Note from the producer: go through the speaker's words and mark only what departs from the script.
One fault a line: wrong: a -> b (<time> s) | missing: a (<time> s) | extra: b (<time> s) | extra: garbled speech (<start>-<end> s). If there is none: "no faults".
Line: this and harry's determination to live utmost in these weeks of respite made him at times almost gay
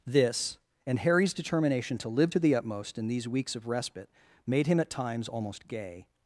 extra: to the (2.3 s)